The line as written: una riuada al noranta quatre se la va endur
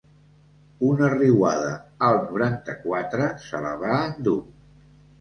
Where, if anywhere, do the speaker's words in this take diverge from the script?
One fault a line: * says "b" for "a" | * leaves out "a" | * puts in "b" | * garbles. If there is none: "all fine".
all fine